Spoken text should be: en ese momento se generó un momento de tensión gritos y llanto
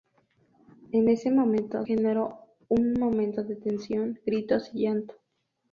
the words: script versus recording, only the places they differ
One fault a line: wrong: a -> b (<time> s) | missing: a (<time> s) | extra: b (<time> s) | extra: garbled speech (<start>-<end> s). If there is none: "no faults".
missing: se (1.9 s)